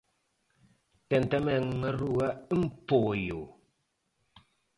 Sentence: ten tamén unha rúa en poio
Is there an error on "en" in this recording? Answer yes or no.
no